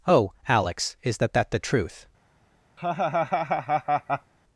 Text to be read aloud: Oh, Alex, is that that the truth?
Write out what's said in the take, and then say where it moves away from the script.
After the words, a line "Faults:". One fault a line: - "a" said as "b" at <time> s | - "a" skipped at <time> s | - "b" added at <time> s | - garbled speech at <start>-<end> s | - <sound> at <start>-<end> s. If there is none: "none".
Oh, Alex, is that that the truth?
Faults:
- laugh at 2.8-4.3 s